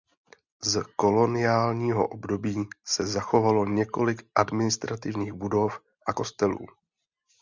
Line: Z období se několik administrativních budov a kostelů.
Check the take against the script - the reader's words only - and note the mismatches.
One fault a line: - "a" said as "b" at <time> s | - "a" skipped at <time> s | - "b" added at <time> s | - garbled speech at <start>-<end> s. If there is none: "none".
- "koloniálního" added at 0.9 s
- "zachovalo" added at 3.1 s